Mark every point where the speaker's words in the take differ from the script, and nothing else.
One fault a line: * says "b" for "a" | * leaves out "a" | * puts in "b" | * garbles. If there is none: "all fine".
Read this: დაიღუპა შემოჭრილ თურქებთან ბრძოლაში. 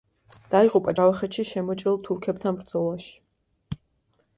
* puts in "ჯავახეთში"